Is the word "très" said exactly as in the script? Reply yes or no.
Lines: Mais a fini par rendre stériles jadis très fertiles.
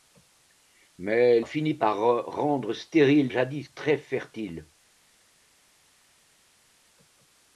yes